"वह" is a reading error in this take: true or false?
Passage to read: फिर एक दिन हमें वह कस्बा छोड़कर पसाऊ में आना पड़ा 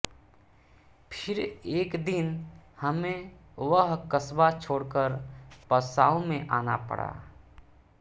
false